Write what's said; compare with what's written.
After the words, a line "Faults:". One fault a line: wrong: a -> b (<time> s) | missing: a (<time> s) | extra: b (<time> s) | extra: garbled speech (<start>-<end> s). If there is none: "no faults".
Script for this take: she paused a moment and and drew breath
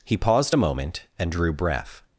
he paused a moment and drew breath
Faults:
wrong: she -> he (0.0 s)
missing: and (1.3 s)